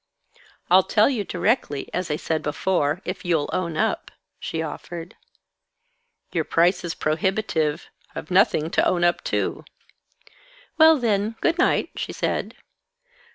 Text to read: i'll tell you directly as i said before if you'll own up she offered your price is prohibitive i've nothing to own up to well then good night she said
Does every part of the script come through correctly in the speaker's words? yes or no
yes